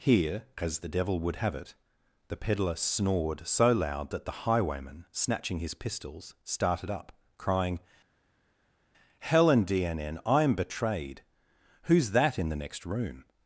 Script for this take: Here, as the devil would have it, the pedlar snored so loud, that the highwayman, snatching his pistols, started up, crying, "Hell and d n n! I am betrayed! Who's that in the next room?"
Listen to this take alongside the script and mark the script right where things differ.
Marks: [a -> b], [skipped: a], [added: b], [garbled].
Here, as the devil would have it, the pedlar snored so loud, that the highwayman, snatching his pistols, started up, crying, "Hell and d n n! I am betrayed! Who's that in the next room?"